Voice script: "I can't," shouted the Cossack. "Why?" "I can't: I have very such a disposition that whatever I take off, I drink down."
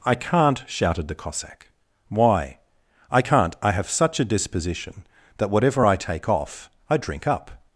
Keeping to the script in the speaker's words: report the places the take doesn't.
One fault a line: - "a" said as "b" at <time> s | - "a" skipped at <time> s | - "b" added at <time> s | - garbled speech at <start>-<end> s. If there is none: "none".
- "very" skipped at 3.9 s
- "down" said as "up" at 7.3 s